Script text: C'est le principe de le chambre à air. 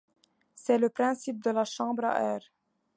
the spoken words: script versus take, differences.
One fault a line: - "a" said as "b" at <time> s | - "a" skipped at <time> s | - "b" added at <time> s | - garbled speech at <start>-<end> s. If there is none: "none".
- "le" said as "la" at 1.5 s